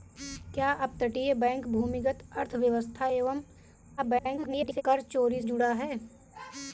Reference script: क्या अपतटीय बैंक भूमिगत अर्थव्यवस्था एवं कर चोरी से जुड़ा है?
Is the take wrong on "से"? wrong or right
wrong